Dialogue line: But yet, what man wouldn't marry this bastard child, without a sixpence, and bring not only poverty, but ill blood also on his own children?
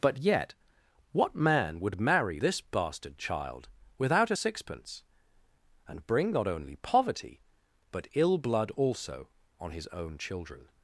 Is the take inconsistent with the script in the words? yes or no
yes